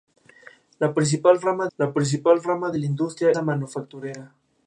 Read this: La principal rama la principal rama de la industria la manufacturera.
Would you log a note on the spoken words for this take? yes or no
no